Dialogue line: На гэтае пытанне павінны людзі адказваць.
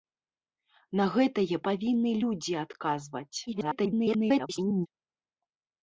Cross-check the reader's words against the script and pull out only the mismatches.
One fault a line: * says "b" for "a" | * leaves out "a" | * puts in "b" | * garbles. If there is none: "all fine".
* leaves out "пытанне"
* garbles